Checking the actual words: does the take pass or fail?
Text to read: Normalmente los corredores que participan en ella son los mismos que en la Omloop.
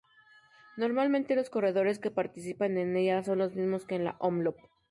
pass